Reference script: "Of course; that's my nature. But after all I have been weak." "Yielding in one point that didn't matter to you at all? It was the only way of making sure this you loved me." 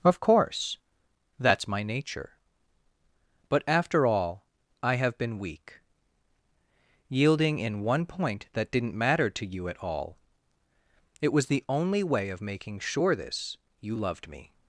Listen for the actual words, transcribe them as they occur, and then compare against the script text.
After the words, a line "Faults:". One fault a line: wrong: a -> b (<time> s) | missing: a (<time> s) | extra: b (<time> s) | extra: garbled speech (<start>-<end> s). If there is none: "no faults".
"Of course; that's my nature. But after all I have been weak." "Yielding in one point that didn't matter to you at all? It was the only way of making sure this you loved me."
Faults:
no faults